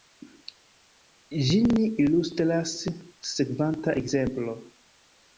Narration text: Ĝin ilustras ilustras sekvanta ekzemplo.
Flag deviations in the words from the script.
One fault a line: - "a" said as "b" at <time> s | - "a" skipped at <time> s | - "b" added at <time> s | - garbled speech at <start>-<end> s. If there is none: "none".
- "ilustras" skipped at 2.7 s